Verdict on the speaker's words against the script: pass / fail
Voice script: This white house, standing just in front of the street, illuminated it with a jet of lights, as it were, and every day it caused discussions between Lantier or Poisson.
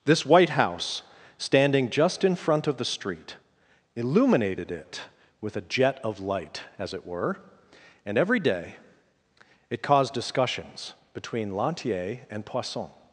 fail